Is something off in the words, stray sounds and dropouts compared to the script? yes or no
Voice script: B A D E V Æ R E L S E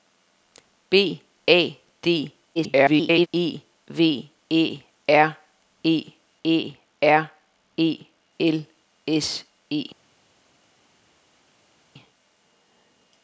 yes